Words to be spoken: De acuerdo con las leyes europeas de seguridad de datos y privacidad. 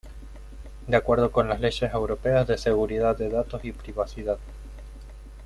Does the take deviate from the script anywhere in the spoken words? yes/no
no